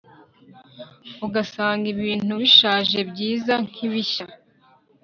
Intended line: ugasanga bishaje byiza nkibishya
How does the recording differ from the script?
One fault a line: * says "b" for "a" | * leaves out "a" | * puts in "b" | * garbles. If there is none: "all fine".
* puts in "ibintu"